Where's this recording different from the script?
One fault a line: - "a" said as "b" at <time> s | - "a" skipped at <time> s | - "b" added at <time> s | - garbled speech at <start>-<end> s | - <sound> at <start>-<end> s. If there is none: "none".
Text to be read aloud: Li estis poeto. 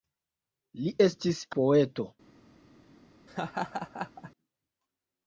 - laugh at 3.3-4.3 s